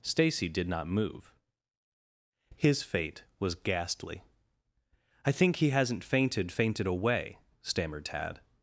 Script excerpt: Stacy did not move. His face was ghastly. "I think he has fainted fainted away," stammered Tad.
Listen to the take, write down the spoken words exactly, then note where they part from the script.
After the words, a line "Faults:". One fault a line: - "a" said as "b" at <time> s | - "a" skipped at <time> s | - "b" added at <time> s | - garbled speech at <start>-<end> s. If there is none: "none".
Stacy did not move. His fate was ghastly. "I think he hasn't fainted fainted away," stammered Tad.
Faults:
- "face" said as "fate" at 2.8 s
- "has" said as "hasn't" at 5.7 s